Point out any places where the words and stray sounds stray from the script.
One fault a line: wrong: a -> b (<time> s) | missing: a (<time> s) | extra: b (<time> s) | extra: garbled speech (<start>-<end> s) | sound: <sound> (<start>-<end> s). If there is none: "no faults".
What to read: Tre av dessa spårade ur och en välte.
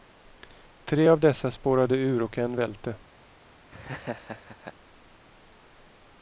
sound: laugh (3.7-4.7 s)